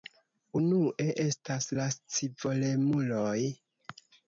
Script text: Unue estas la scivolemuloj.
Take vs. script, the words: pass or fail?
pass